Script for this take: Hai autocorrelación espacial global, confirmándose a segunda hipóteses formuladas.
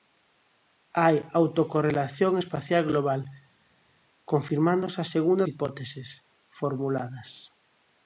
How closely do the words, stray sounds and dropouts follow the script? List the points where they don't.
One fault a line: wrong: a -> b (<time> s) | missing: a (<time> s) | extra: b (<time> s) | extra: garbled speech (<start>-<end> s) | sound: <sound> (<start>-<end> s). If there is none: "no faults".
no faults